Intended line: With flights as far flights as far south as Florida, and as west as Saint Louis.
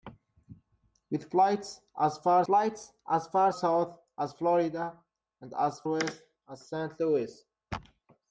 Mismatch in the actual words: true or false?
false